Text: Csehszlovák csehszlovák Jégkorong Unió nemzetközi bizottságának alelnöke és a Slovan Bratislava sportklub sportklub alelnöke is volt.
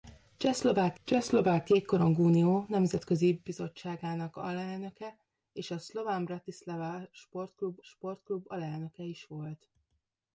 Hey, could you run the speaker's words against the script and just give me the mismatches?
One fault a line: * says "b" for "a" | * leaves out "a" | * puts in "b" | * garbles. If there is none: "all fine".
all fine